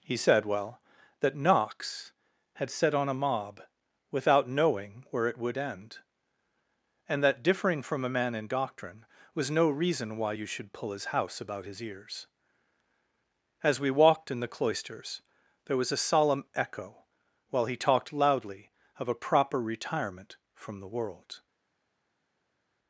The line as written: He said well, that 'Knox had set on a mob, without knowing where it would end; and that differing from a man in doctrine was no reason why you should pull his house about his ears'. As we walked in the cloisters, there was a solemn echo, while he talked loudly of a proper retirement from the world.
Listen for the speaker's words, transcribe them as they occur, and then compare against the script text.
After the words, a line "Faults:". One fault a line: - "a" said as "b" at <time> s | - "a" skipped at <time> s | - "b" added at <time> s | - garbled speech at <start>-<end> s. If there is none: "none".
He said well, that 'Knox had set on a mob, without knowing where it would end; and that differing from a man in doctrine was no reason why you should pull his house about his ears'. As we walked in the cloisters, there was a solemn echo, while he talked loudly of a proper retirement from the world.
Faults:
none